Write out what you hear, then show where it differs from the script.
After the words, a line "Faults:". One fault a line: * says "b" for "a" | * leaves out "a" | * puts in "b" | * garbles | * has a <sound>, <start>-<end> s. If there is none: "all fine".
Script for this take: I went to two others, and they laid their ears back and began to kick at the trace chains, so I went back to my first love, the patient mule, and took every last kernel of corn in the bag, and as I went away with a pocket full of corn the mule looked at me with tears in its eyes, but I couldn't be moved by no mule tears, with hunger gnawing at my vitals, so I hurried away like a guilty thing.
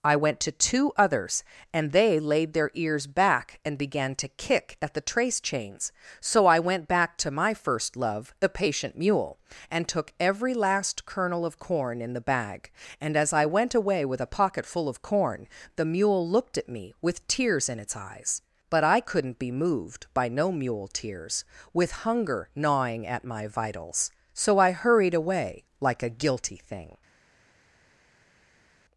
I went to two others, and they laid their ears back and began to kick at the trace chains, so I went back to my first love, the patient mule, and took every last kernel of corn in the bag, and as I went away with a pocket full of corn the mule looked at me with tears in its eyes, but I couldn't be moved by no mule tears, with hunger gnawing at my vitals, so I hurried away like a guilty thing.
Faults:
all fine